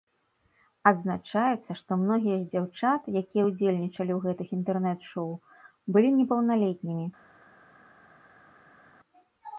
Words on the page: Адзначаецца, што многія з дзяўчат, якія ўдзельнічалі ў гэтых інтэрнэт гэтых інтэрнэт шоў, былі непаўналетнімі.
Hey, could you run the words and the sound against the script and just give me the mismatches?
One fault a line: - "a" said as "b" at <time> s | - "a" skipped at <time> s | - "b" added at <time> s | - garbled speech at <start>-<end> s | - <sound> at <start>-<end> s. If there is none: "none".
- "гэтых інтэрнэт" skipped at 5.0 s